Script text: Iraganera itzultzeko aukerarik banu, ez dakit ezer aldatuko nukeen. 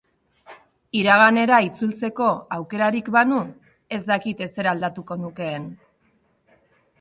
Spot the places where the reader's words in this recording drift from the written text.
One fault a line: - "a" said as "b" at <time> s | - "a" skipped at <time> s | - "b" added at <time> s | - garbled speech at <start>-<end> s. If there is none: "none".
none